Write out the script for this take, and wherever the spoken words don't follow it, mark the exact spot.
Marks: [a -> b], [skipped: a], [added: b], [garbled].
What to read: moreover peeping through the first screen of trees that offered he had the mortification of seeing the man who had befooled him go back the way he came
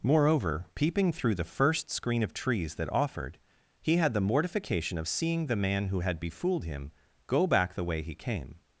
moreover peeping through the first screen of trees that offered he had the mortification of seeing the man who had befooled him go back the way he came